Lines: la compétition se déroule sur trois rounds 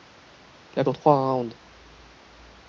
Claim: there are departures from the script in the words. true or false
true